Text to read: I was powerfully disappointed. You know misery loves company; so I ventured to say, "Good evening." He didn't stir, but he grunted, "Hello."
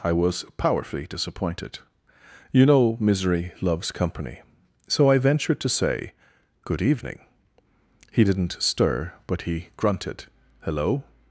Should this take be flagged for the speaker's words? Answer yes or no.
no